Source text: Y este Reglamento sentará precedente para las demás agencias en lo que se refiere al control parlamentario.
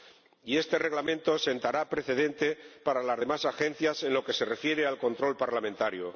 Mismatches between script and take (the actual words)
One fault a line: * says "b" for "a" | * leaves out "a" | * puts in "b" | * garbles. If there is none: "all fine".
all fine